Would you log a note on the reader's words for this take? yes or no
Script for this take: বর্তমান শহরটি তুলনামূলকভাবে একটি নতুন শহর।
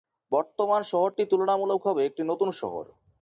no